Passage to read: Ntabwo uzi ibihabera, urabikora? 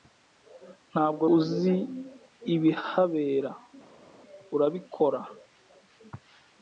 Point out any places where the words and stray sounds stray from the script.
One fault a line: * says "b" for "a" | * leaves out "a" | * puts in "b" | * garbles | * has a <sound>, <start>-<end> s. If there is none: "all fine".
all fine